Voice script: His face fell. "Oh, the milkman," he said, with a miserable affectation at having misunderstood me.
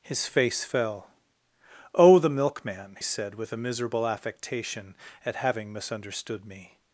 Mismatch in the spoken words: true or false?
true